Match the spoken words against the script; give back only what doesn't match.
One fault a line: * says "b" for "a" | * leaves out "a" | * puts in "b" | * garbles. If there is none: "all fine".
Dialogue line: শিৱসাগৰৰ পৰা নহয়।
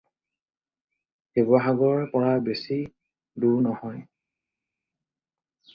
* puts in "বেছি দূৰ"